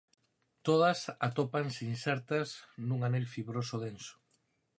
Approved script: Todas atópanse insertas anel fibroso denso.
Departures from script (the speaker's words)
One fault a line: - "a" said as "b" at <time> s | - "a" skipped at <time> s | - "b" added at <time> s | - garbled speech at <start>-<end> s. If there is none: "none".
- "nun" added at 2.9 s